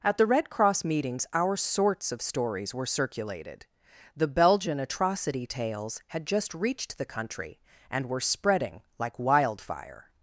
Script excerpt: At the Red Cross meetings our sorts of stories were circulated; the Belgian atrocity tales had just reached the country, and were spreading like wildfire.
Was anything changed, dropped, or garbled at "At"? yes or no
no